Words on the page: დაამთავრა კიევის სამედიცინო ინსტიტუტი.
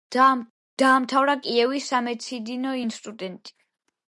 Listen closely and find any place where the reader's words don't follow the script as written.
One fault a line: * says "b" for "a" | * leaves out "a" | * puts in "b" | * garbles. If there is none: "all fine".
all fine